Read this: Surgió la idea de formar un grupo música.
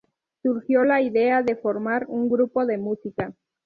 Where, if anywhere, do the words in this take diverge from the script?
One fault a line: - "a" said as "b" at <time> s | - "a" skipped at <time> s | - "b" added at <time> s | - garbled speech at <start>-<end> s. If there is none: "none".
- "de" added at 2.7 s